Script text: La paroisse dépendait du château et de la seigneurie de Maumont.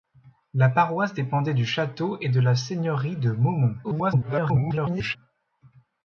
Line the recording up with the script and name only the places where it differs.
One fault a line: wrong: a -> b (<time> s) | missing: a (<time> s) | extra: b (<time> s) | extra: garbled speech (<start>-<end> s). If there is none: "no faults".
extra: garbled speech (3.8-5.2 s)